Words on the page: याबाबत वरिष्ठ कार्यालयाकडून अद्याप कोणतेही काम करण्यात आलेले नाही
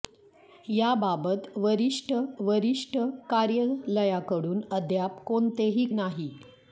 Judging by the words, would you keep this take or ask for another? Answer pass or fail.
fail